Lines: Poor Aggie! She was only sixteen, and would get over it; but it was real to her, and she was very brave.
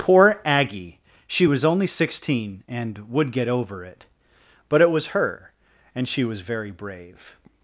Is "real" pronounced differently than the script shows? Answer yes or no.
yes